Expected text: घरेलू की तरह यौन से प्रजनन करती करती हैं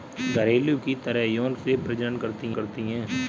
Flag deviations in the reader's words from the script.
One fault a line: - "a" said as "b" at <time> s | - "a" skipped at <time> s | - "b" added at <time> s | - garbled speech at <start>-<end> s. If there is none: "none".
none